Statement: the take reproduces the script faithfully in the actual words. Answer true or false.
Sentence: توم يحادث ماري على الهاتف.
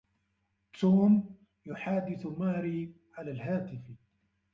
true